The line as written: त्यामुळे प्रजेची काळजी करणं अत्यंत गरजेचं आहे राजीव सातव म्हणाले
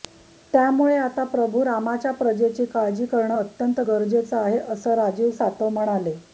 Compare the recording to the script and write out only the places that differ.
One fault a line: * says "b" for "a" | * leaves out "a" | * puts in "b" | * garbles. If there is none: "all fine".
* puts in "आता प्रभू रामाच्या"
* puts in "असं"